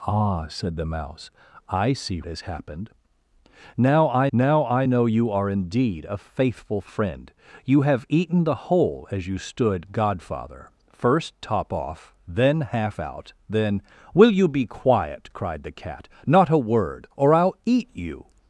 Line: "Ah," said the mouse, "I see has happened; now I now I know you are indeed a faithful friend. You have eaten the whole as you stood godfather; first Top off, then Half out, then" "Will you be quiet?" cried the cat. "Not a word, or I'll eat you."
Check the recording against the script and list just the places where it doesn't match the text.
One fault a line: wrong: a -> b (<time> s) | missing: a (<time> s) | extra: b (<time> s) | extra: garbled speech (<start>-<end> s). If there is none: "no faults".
no faults